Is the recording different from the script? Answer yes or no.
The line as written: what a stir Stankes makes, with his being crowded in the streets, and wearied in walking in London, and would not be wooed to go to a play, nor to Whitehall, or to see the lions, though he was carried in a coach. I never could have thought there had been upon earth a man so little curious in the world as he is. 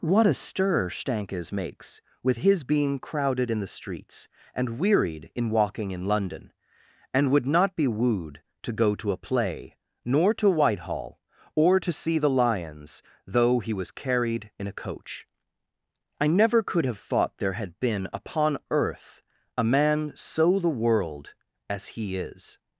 yes